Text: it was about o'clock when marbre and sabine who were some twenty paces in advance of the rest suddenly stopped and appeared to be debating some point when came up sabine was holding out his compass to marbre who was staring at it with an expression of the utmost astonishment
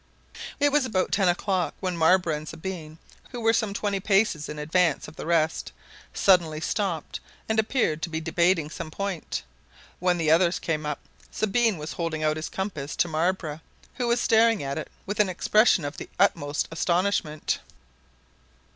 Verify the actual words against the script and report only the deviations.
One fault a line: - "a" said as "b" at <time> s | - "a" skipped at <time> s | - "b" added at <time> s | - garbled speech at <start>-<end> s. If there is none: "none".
- "ten" added at 1.1 s
- "the others" added at 10.2 s